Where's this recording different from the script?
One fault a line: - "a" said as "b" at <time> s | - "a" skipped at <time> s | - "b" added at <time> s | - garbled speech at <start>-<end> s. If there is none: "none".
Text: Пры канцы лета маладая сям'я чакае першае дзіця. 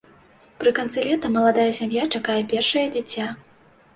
none